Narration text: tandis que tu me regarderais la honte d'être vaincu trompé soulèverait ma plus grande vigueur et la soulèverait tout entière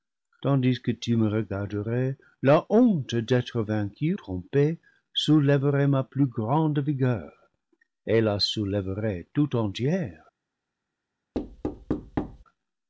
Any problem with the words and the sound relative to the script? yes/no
yes